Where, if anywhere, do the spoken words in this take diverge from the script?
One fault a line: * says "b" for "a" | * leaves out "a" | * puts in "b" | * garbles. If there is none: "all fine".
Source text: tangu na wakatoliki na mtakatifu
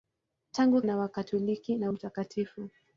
all fine